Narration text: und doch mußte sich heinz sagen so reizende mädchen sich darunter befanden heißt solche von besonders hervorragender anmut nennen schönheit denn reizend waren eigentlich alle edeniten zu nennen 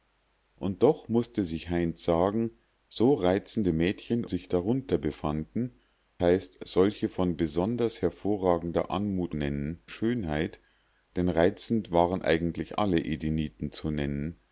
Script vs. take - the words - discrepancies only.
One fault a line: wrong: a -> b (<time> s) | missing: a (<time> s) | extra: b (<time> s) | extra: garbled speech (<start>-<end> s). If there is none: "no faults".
no faults